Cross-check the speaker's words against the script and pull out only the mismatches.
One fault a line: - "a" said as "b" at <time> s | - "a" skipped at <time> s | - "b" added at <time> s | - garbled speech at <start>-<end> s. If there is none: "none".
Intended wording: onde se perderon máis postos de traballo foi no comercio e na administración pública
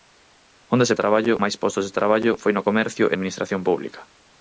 - "perderon" said as "traballo" at 1.0 s
- "na" skipped at 3.1 s